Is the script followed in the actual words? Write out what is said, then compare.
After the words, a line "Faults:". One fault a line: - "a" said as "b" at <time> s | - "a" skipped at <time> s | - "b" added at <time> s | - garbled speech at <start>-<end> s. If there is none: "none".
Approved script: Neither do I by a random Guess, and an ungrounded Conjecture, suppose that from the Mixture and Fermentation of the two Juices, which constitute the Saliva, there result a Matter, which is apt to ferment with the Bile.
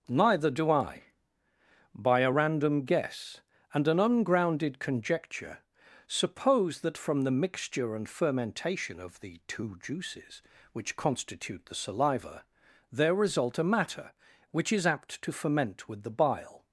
Neither do I by a random Guess, and an ungrounded Conjecture, suppose that from the Mixture and Fermentation of the two Juices, which constitute the Saliva, there result a Matter, which is apt to ferment with the Bile.
Faults:
none